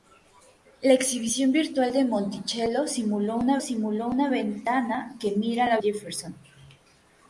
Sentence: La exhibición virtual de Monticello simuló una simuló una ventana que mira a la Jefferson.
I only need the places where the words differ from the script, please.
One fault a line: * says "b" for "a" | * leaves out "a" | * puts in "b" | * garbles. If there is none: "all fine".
all fine